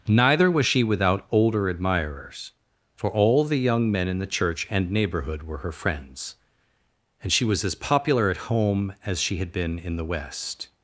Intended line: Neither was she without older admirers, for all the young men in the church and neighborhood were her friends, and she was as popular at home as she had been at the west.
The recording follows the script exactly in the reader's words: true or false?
false